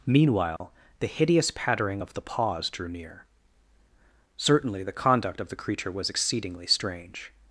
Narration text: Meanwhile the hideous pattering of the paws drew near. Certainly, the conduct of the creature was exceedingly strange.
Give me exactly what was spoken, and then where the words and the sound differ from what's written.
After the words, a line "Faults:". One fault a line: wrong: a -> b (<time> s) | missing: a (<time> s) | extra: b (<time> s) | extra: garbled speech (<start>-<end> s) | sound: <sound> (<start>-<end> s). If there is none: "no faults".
Meanwhile the hideous pattering of the paws drew near. Certainly, the conduct of the creature was exceedingly strange.
Faults:
sound: dropout (0.6-0.6 s)